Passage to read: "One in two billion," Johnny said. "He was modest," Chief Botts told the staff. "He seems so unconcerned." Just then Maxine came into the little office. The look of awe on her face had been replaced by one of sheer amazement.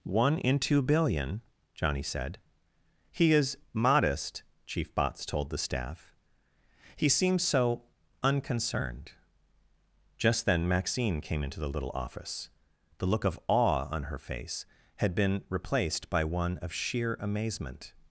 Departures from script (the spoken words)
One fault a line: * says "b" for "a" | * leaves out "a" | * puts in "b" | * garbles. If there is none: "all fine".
* says "is" for "was"